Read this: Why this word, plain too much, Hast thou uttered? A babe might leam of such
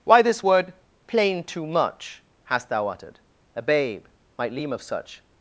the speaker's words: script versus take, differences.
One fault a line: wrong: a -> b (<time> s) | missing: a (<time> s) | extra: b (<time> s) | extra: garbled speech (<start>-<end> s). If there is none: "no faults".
no faults